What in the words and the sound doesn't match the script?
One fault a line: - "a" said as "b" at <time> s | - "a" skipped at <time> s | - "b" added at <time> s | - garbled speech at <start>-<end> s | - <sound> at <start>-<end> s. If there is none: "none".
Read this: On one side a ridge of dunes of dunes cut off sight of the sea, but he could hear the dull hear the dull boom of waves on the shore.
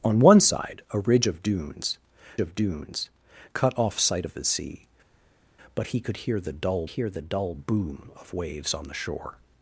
none